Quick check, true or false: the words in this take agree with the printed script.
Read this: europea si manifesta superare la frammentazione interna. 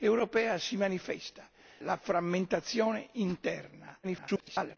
false